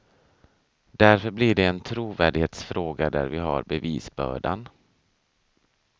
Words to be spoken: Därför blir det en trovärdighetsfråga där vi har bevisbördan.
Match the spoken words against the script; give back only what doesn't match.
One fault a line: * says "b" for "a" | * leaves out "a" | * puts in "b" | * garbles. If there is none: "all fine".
all fine